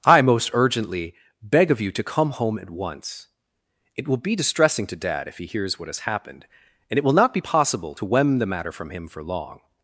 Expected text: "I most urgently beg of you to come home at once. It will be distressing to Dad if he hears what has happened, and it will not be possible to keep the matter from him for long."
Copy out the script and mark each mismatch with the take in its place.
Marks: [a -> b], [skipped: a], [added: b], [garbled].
"I most urgently beg of you to come home at once. It will be distressing to Dad if he hears what has happened, and it will not be possible to [keep -> wem] the matter from him for long."